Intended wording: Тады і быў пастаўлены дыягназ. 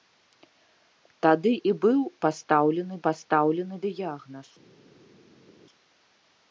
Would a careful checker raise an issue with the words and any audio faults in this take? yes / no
yes